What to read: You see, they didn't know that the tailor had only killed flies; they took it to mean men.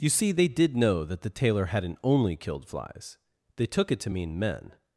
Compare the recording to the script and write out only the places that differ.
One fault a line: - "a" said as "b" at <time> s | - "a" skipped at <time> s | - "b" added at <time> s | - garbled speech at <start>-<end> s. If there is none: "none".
- "didn't" said as "did" at 0.5 s
- "had" said as "hadn't" at 1.6 s